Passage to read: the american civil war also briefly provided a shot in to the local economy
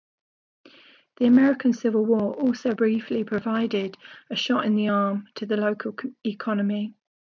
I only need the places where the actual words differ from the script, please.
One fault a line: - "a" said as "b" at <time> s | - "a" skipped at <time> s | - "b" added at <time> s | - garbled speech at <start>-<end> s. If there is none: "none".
- "the arm" added at 4.7 s